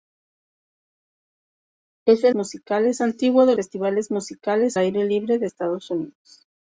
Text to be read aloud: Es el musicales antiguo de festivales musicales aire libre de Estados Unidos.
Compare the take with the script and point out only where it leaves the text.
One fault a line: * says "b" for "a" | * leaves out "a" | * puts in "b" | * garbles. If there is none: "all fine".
all fine